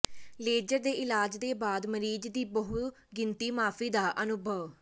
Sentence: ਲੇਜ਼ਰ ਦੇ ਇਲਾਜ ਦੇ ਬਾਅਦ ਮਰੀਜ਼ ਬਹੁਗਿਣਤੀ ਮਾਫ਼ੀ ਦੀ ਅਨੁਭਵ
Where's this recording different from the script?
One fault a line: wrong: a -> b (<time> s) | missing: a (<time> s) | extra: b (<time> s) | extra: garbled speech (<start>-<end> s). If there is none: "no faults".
extra: ਦੀ (2.3 s)
wrong: ਦੀ -> ਦਾ (3.9 s)